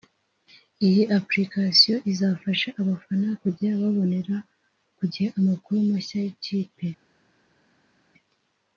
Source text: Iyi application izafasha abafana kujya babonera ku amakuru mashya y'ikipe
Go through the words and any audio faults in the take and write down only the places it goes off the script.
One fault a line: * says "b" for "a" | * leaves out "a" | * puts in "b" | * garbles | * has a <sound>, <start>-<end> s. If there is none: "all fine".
* puts in "gihe"